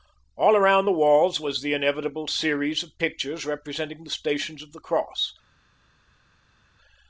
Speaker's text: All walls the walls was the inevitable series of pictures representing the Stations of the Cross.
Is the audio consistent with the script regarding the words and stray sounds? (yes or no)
no